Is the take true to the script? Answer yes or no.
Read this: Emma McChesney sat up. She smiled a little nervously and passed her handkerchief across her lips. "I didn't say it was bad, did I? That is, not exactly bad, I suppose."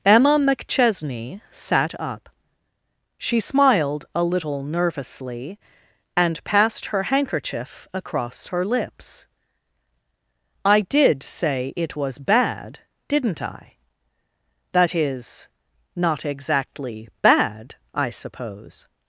no